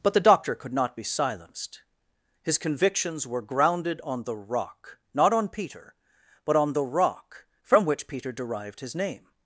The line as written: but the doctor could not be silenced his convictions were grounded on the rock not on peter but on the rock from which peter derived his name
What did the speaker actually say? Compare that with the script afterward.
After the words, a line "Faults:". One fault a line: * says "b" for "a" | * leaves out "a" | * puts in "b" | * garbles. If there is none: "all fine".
but the doctor could not be silenced his convictions were grounded on the rock not on peter but on the rock from which peter derived his name
Faults:
all fine